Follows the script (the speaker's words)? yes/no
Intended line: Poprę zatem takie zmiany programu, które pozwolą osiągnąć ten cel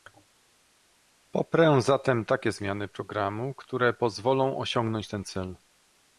yes